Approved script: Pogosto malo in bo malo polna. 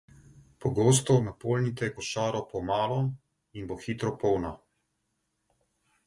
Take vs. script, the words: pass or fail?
fail